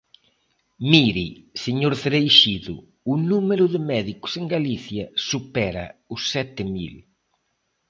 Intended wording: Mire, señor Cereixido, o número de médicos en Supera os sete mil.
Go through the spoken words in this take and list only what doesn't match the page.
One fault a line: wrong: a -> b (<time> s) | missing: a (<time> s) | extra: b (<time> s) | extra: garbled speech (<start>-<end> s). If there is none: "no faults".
extra: Galicia (4.5 s)